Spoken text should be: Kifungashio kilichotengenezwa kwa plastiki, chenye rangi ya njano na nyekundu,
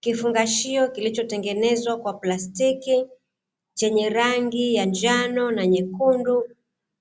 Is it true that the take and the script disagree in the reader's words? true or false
false